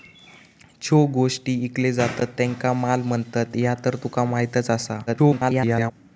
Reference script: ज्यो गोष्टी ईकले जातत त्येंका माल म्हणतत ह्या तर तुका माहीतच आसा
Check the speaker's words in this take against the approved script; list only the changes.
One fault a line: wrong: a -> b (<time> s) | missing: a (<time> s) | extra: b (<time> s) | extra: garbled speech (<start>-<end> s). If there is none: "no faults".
extra: garbled speech (5.1-5.9 s)